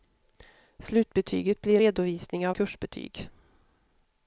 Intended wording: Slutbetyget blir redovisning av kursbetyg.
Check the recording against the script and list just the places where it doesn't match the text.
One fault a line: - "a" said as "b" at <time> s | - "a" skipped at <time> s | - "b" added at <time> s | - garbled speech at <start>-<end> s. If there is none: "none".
none